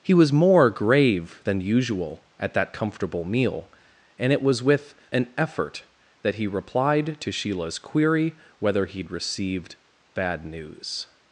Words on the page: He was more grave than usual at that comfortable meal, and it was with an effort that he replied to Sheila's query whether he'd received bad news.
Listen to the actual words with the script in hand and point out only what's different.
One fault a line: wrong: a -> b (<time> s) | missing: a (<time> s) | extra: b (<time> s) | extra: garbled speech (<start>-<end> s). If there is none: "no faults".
no faults